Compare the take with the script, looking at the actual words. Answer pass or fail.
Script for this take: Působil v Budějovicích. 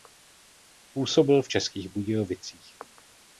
fail